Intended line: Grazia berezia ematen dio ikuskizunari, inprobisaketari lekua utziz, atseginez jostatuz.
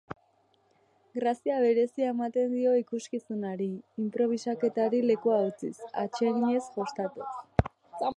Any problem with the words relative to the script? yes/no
no